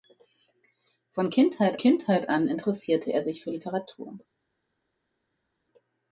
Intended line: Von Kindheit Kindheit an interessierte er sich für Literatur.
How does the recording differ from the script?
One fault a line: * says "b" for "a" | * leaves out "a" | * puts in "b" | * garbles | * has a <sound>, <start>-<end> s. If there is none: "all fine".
all fine